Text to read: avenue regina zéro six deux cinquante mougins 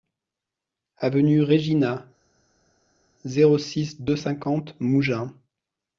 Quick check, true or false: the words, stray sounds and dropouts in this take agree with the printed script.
true